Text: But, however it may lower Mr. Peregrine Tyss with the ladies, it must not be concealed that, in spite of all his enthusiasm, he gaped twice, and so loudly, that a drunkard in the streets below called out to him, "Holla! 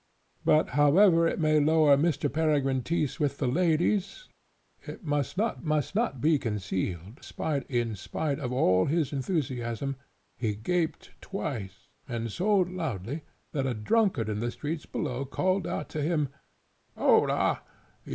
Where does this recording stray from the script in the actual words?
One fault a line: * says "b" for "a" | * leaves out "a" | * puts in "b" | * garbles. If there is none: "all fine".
* puts in "must not"
* says "spite" for "that"